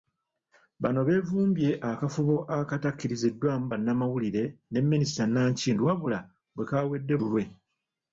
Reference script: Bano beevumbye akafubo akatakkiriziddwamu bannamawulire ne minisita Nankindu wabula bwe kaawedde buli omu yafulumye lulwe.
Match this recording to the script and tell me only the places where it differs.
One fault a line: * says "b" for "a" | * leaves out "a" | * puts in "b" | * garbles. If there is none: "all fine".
* leaves out "buli omu yafulumye"